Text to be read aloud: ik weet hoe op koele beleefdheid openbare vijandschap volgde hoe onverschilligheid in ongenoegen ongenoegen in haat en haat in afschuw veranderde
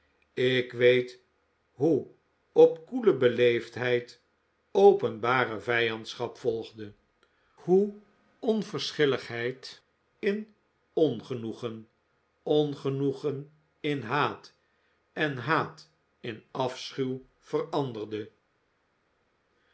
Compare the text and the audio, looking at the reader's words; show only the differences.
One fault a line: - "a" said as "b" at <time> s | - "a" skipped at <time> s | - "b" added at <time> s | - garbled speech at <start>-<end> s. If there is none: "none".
none